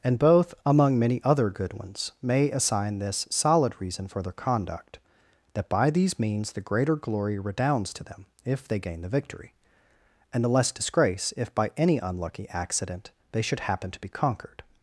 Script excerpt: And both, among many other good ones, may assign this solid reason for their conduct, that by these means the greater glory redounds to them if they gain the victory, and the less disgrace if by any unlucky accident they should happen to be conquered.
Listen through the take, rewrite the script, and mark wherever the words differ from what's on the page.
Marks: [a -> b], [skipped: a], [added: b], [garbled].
And both, among many other good ones, may assign this solid reason for their conduct, that by these means the greater glory redounds to them if they gain the victory, and the less disgrace if by any unlucky accident they should happen to be conquered.